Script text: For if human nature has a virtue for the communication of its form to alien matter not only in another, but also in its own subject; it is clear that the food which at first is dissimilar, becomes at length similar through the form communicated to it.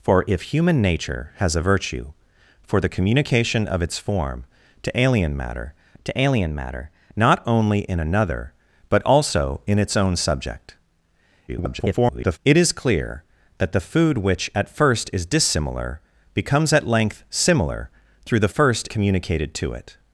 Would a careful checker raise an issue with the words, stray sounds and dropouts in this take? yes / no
yes